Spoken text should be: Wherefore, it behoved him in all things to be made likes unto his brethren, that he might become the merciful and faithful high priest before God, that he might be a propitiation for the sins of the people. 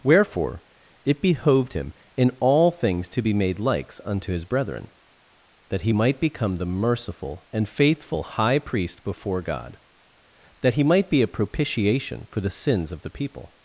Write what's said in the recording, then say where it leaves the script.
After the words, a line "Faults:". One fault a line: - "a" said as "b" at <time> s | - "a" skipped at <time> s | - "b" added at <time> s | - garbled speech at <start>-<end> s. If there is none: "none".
Wherefore, it behoved him in all things to be made likes unto his brethren, that he might become the merciful and faithful high priest before God, that he might be a propitiation for the sins of the people.
Faults:
none